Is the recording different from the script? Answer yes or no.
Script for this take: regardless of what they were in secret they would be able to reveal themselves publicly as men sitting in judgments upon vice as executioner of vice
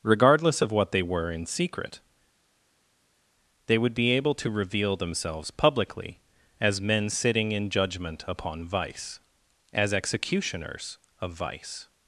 yes